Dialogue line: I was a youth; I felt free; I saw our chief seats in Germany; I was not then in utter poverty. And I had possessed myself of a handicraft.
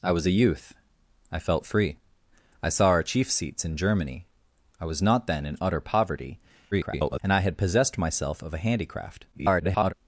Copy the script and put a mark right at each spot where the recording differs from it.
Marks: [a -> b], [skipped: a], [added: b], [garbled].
I was a youth; I felt free; I saw our chief seats in Germany; I was not then in utter poverty. [garbled] And I had possessed myself of a handicraft. [garbled]